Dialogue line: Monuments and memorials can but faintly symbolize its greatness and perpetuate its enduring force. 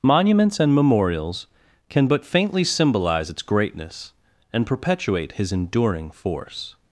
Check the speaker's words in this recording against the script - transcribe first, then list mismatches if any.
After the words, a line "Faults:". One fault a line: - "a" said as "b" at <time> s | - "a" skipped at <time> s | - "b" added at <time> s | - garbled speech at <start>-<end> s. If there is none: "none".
Monuments and memorials can but faintly symbolize its greatness and perpetuate his enduring force.
Faults:
- "its" said as "his" at 5.3 s